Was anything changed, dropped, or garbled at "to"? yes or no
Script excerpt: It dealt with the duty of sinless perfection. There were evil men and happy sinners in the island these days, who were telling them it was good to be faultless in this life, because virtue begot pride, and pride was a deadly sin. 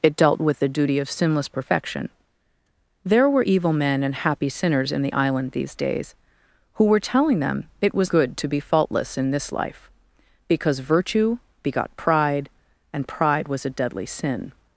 no